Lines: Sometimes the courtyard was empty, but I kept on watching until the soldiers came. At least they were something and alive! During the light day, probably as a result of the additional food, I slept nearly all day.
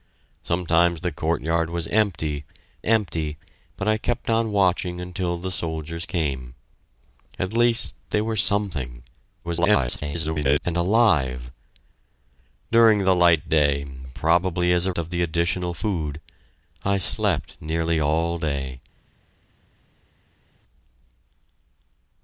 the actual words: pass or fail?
fail